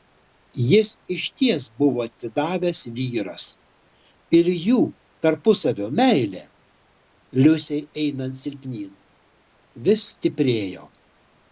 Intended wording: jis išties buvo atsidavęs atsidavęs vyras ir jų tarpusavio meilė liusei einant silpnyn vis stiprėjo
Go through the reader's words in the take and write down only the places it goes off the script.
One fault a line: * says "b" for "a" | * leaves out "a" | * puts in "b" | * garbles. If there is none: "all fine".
* leaves out "atsidavęs"